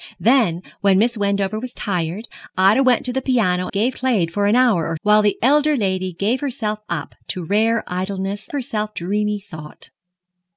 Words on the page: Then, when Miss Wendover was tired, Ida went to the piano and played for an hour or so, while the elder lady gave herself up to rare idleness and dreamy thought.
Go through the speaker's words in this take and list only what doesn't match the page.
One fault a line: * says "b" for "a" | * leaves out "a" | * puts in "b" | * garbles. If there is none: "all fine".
* says "gave" for "and"
* leaves out "so"
* says "herself" for "and"